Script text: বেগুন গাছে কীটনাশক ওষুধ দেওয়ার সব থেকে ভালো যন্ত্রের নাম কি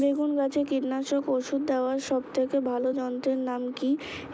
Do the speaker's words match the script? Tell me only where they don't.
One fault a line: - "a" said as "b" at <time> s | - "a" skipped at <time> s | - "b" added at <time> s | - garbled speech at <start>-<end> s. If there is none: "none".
none